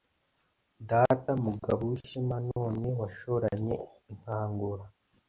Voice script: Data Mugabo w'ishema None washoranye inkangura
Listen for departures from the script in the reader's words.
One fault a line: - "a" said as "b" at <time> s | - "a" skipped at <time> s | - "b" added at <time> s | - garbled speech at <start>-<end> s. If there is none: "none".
none